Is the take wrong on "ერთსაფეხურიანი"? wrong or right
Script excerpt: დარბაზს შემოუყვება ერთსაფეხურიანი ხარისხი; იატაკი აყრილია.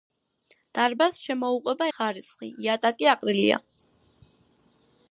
wrong